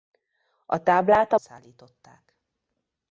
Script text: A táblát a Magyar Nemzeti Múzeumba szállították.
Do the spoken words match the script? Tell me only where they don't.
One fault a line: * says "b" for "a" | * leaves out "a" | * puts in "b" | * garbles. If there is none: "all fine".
* leaves out "Magyar Nemzeti Múzeumba"